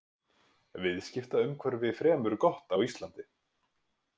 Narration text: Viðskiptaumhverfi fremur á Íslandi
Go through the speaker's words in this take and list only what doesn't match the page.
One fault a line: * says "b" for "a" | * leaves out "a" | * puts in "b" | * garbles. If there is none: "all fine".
* puts in "gott"